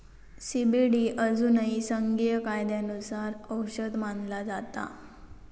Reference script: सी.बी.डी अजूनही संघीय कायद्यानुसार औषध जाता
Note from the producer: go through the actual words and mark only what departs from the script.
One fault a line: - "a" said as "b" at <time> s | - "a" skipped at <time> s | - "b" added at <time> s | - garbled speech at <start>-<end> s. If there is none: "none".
- "मानला" added at 4.0 s